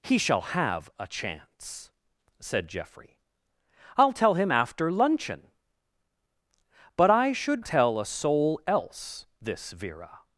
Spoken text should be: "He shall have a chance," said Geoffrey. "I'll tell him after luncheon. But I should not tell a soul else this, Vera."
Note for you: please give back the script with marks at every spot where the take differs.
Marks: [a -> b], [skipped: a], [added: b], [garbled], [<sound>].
"He shall have a chance," said Geoffrey. "I'll tell him after luncheon. But I should [skipped: not] tell a soul else this, Vera."